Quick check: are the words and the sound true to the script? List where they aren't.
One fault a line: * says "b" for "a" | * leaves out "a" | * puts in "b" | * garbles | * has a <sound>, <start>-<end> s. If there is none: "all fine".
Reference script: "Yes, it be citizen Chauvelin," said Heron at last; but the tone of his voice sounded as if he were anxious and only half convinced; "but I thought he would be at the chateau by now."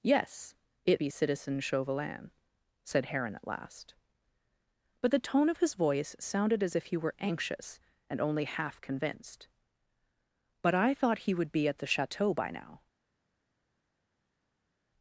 all fine